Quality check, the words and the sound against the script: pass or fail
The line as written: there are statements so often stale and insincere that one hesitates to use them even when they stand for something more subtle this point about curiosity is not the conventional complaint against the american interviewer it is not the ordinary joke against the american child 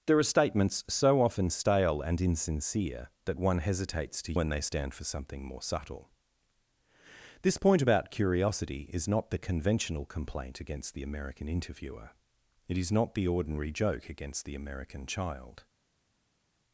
fail